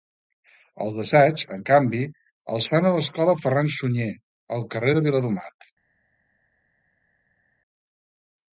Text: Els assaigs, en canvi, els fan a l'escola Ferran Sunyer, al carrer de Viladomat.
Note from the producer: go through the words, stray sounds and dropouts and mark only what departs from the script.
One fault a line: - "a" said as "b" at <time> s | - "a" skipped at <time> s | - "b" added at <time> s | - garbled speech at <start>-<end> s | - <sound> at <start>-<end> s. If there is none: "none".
none